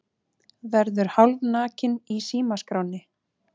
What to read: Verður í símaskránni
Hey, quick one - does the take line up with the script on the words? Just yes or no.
no